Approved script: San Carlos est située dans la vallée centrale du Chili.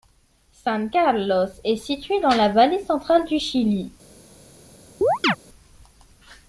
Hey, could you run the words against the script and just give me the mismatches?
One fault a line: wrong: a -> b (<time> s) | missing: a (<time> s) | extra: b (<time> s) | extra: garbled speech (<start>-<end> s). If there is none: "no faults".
no faults